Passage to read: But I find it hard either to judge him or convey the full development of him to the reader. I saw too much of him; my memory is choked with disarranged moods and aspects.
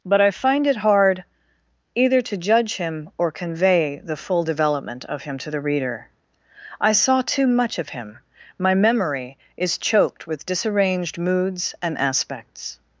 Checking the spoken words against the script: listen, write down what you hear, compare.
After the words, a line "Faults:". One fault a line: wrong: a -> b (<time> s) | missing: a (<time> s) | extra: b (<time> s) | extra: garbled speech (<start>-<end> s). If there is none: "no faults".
But I find it hard either to judge him or convey the full development of him to the reader. I saw too much of him; my memory is choked with disarranged moods and aspects.
Faults:
no faults